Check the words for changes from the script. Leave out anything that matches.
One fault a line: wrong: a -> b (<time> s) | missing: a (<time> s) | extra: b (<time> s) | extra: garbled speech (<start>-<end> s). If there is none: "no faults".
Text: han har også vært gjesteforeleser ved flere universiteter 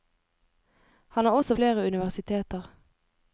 missing: vært gjesteforeleser ved (1.6 s)